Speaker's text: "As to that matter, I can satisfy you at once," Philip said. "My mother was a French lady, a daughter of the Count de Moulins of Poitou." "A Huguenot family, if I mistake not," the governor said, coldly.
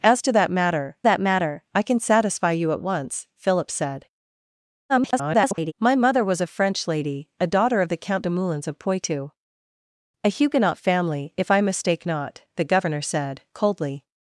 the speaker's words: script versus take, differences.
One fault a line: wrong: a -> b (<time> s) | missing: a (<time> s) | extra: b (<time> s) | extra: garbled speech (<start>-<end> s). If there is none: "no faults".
extra: that matter (1.0 s)
extra: garbled speech (4.9-5.7 s)